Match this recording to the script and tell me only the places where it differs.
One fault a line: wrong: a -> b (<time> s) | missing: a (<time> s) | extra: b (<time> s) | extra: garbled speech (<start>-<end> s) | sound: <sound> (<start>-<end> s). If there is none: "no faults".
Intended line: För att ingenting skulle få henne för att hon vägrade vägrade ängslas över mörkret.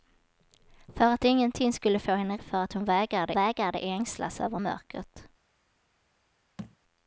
sound: thud (6.6-6.8 s)